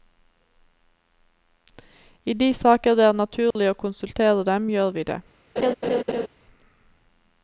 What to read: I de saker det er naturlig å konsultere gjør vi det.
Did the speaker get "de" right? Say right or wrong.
right